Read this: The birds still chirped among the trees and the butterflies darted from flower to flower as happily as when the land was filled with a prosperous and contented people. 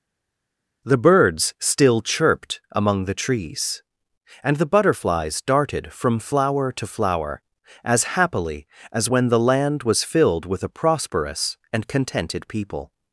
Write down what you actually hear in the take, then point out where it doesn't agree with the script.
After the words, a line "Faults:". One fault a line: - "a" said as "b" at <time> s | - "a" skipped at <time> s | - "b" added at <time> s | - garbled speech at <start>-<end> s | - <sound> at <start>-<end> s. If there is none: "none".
The birds still chirped among the trees and the butterflies darted from flower to flower as happily as when the land was filled with a prosperous and contented people.
Faults:
none